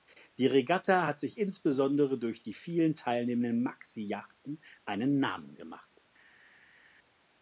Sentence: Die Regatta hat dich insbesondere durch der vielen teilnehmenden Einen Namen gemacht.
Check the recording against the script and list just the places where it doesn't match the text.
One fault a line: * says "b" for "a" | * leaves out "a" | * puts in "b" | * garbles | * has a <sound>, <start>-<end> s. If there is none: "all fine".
* says "sich" for "dich"
* says "die" for "der"
* puts in "Maxi Yachten"